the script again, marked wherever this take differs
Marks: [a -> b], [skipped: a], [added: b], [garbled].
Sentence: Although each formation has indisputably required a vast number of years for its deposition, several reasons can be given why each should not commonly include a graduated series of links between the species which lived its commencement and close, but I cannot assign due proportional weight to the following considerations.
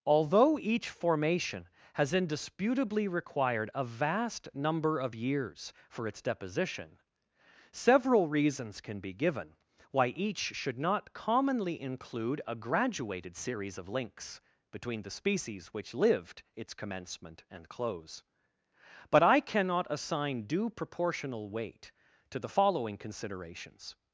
Although each formation has indisputably required a vast number of years for its deposition, several reasons can be given why each should not commonly include a graduated series of links between the species which lived its commencement and close, but I cannot assign due proportional weight to the following considerations.